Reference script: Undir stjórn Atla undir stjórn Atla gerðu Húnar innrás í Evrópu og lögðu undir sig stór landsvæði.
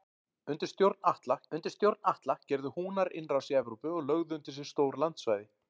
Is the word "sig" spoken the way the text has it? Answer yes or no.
yes